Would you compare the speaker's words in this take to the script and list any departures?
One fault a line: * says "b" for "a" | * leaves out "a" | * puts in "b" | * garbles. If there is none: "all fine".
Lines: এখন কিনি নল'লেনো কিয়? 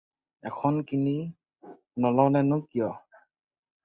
all fine